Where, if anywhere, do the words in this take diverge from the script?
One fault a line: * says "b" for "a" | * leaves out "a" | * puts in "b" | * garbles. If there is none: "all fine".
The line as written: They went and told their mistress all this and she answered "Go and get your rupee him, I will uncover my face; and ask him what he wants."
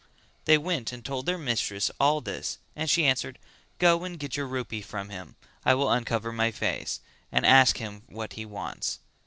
* puts in "from"